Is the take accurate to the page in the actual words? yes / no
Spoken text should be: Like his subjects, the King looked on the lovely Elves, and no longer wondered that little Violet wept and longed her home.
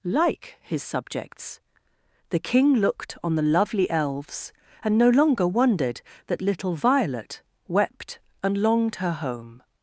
yes